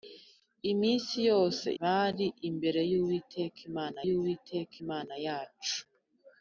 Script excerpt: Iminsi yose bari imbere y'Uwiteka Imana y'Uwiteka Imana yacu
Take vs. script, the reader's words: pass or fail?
pass